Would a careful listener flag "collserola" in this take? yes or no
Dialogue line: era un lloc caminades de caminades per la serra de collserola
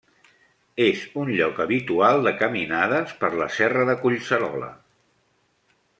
no